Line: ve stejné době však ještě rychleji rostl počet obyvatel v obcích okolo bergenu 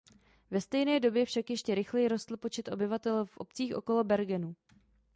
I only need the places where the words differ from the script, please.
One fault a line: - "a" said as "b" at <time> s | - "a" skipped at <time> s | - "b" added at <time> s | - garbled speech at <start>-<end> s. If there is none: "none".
none